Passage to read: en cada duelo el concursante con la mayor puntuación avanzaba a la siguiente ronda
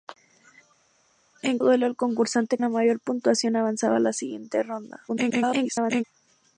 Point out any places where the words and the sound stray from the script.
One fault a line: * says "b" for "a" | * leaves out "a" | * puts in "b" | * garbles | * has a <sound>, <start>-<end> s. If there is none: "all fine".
* leaves out "cada"
* leaves out "con"
* garbles